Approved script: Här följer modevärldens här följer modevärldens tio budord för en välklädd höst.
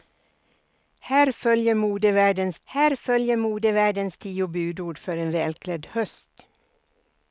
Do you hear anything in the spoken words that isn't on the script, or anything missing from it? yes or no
no